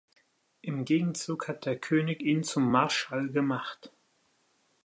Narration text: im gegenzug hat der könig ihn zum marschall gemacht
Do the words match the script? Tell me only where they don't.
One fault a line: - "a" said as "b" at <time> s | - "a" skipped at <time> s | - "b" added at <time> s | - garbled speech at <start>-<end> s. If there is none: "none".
none